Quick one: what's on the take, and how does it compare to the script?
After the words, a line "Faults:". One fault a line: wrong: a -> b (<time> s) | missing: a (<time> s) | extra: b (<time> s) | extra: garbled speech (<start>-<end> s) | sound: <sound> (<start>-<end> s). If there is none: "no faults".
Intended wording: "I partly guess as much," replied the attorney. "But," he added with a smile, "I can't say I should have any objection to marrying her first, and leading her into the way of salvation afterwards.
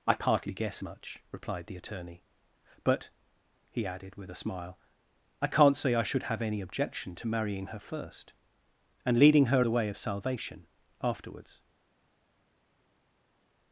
"I partly guess much," replied the attorney. "But," he added with a smile, "I can't say I should have any objection to marrying her first, and leading her the way of salvation afterwards.
Faults:
missing: as (0.8 s)
missing: into (9.7 s)